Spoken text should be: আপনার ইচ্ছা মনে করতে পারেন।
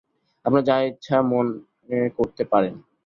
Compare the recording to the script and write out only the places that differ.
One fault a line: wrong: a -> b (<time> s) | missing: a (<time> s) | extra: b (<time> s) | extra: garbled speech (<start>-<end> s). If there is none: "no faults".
extra: যা (0.6 s)